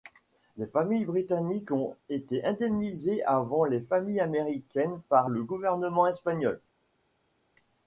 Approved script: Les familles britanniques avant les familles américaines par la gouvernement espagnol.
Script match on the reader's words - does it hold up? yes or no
no